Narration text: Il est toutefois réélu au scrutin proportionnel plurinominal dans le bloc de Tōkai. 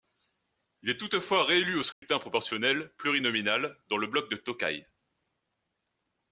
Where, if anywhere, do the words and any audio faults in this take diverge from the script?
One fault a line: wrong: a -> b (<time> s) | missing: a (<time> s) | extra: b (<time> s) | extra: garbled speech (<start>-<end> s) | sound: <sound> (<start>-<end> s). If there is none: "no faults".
sound: dropout (1.9-2.0 s)